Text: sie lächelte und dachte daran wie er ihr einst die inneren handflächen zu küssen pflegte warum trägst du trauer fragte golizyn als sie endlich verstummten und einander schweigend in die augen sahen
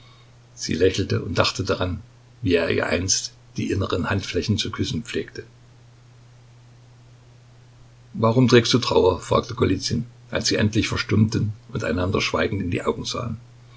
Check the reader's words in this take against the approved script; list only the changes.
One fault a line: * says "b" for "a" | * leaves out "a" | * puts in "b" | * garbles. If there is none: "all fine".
all fine